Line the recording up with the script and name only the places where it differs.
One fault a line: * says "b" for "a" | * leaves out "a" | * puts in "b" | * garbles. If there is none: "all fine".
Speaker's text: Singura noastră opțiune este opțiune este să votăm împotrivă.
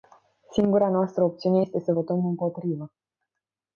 * leaves out "opțiune este"